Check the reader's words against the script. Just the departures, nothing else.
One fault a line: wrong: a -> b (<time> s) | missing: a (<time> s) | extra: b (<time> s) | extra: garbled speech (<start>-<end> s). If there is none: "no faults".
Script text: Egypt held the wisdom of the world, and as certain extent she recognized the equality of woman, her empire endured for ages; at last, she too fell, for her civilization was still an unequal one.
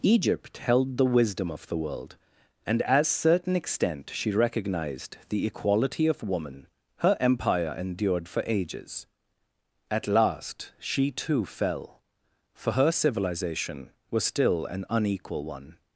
no faults